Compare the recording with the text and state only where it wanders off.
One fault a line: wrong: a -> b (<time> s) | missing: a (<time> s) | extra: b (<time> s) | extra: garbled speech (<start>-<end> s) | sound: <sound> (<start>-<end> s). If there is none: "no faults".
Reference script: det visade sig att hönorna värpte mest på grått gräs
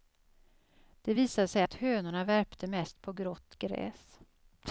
no faults